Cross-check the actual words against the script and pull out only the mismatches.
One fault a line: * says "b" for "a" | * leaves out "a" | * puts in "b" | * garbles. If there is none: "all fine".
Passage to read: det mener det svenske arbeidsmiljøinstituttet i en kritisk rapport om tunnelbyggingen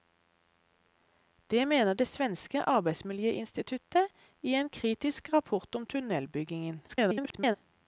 * garbles